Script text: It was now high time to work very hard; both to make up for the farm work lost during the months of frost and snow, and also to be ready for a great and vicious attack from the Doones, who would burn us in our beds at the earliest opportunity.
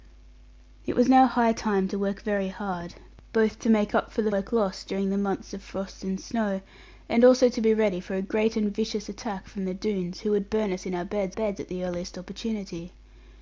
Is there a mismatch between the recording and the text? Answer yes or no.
yes